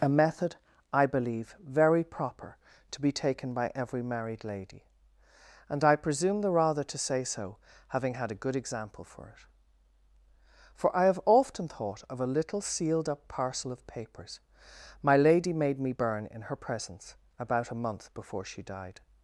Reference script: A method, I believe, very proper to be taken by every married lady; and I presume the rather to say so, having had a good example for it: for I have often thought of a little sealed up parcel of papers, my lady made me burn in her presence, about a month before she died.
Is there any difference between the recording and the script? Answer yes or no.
no